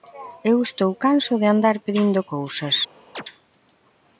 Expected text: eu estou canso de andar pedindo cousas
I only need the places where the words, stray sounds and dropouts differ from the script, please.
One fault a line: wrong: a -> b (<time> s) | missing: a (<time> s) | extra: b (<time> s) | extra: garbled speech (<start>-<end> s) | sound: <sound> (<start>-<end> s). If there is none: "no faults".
sound: chirp (3.2-3.2 s)